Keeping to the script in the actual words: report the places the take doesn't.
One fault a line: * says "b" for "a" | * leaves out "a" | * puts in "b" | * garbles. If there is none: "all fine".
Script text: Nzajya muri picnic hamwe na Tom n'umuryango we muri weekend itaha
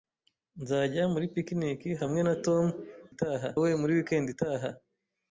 * says "itaha" for "n'umuryango"